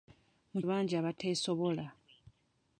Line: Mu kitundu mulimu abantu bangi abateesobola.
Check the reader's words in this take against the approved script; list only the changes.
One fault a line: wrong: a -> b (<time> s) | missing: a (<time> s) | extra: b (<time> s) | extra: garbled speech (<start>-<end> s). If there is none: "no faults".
missing: kitundu mulimu abantu (0.6 s)